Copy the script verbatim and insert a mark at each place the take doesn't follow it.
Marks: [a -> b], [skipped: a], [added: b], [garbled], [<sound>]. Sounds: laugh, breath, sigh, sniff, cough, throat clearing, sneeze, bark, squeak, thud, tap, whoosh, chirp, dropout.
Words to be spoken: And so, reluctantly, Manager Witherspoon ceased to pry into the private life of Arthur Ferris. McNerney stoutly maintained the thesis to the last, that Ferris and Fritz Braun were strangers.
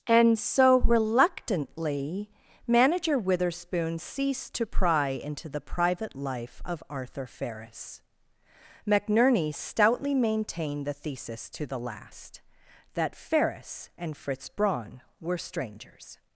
And so, reluctantly, Manager Witherspoon ceased to pry into the private life of Arthur Ferris. McNerney stoutly maintained the thesis to the last, that Ferris and Fritz Braun were strangers.